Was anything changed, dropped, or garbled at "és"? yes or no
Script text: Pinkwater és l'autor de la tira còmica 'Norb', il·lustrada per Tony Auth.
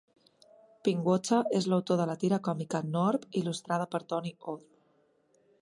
no